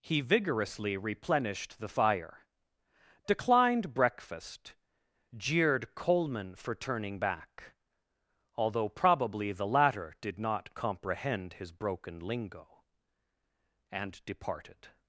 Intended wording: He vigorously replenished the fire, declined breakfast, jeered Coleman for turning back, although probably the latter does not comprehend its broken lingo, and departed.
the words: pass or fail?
fail